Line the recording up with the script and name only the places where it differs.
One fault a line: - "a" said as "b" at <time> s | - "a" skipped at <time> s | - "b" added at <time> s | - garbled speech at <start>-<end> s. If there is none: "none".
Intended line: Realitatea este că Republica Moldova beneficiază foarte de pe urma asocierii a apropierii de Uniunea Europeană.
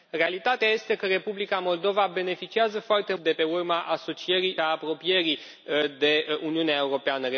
none